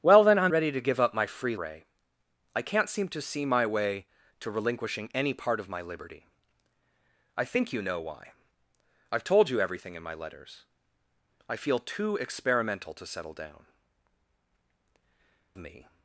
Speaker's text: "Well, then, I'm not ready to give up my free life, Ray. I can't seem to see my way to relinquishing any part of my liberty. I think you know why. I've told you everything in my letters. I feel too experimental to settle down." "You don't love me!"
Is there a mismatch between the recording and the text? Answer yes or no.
yes